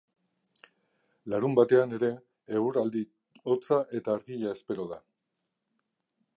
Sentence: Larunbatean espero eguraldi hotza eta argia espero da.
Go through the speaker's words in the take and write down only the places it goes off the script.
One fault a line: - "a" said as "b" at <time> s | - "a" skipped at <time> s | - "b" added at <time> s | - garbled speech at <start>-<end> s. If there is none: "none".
- "espero" said as "ere" at 2.0 s